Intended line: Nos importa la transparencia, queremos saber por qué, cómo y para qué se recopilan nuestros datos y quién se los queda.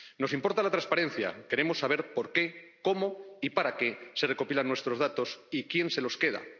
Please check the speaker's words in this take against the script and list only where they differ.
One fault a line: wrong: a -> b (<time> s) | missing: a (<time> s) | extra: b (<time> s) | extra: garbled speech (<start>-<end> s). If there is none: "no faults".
no faults